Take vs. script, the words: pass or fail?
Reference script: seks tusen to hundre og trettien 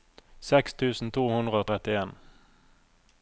pass